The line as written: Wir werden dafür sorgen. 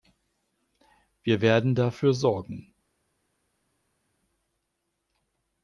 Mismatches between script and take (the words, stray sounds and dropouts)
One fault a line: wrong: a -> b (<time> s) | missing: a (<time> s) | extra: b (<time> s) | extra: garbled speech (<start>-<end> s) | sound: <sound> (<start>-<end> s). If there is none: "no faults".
no faults